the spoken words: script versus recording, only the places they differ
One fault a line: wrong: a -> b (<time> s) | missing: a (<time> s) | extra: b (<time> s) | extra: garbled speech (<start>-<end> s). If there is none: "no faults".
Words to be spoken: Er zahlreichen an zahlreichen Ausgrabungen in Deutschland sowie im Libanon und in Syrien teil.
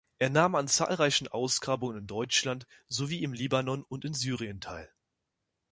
wrong: zahlreichen -> nahm (0.3 s)